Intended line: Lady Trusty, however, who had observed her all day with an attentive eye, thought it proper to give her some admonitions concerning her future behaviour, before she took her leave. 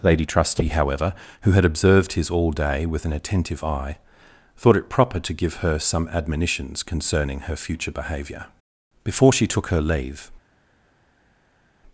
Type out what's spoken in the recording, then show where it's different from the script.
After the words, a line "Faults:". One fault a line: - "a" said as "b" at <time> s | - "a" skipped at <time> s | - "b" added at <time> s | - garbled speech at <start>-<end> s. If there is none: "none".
Lady Trusty, however, who had observed his all day with an attentive eye, thought it proper to give her some admonitions concerning her future behaviour, before she took her leave.
Faults:
- "her" said as "his" at 2.1 s